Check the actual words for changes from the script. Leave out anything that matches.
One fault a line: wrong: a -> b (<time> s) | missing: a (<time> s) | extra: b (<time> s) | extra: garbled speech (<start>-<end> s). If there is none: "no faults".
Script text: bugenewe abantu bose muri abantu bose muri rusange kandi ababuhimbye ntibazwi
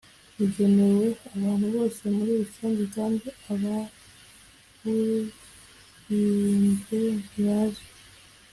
missing: abantu bose muri (2.3 s)